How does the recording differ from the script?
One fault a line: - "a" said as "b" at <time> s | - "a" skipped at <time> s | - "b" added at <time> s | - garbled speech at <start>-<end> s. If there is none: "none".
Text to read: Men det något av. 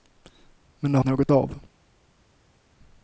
none